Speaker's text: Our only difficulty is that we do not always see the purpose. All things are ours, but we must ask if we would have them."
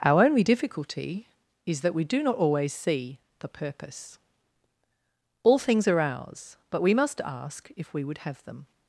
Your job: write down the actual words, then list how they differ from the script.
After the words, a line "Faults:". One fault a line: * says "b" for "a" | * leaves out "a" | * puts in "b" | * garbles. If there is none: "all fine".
Our only difficulty is that we do not always see the purpose. All things are ours, but we must ask if we would have them."
Faults:
all fine